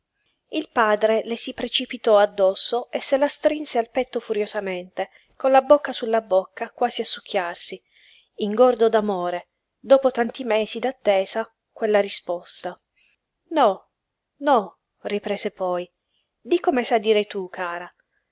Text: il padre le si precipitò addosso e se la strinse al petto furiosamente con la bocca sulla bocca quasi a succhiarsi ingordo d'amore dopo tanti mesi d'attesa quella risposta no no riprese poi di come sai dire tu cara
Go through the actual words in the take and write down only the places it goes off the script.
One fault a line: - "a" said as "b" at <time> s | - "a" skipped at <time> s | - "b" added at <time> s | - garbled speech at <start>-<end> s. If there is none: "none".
none